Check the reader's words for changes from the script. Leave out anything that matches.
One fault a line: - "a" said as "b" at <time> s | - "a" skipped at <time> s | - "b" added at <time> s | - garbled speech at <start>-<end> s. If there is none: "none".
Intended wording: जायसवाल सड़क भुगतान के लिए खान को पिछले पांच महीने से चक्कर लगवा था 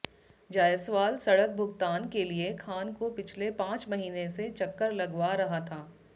- "रहा" added at 5.3 s